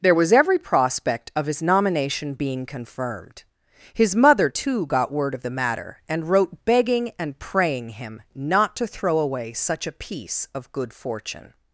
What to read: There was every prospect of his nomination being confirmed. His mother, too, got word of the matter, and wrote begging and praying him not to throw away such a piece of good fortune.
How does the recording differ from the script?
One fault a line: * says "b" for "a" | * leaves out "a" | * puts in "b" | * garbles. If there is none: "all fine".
all fine